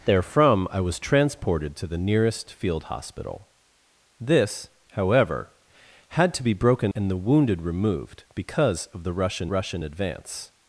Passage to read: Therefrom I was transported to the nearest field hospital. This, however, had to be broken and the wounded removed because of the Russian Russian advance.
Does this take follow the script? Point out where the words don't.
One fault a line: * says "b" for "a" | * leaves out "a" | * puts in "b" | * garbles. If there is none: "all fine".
all fine